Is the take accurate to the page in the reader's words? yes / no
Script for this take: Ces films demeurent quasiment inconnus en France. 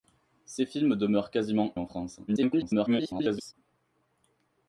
no